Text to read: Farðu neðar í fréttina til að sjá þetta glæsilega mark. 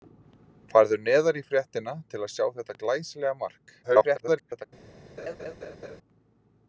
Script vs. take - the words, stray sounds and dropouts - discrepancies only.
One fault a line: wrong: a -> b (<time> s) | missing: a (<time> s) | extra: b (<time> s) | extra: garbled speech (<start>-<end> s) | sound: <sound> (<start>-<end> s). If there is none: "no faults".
extra: garbled speech (3.8-4.7 s)
sound: laugh (5.2-6.0 s)